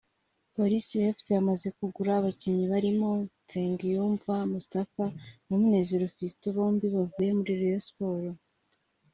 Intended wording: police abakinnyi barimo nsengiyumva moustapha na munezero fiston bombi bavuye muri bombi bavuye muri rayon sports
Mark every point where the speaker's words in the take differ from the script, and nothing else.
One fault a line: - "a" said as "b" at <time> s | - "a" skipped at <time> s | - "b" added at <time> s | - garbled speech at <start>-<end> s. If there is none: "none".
- "fc yamaze kugura" added at 1.1 s
- "bombi bavuye muri" skipped at 7.5 s